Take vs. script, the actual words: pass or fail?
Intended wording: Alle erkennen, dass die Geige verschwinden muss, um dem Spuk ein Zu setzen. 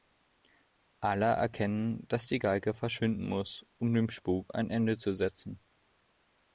fail